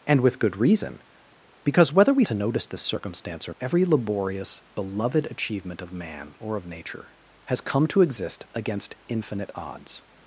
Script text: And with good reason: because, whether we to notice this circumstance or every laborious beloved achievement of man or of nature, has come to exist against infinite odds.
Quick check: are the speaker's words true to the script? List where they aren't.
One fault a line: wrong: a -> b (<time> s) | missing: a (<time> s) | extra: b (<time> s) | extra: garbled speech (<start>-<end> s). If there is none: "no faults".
no faults